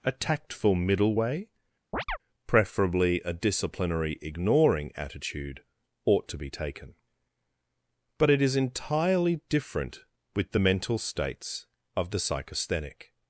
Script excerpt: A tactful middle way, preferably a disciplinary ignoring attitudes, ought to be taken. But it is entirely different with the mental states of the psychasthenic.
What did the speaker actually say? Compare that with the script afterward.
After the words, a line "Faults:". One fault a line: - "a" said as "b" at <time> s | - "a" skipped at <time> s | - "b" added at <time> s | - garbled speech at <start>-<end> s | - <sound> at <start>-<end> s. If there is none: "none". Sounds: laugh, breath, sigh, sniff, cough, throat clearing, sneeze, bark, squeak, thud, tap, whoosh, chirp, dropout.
A tactful middle way, preferably a disciplinary ignoring attitude, ought to be taken. But it is entirely different with the mental states of the psychasthenic.
Faults:
- chirp at 1.9-2.2 s
- "attitudes" said as "attitude" at 5.0 s